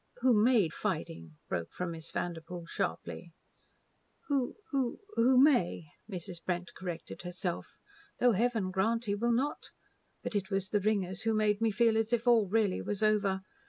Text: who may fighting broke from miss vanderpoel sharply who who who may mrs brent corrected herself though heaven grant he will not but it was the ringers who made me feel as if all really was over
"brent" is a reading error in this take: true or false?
false